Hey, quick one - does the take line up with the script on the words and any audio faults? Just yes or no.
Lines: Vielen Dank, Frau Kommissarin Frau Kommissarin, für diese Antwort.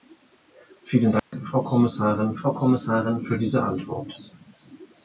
no